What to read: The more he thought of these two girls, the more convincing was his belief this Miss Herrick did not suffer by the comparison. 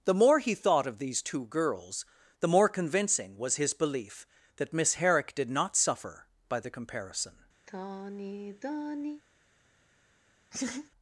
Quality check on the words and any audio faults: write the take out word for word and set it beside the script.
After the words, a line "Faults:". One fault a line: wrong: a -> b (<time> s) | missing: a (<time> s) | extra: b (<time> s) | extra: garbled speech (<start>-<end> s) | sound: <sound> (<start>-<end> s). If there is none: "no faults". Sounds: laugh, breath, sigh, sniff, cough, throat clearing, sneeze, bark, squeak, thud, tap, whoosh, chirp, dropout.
The more he thought of these two girls, the more convincing was his belief that Miss Herrick did not suffer by the comparison.
Faults:
wrong: this -> that (4.5 s)
sound: sigh (7.7-9.2 s)
sound: laugh (10.5-10.9 s)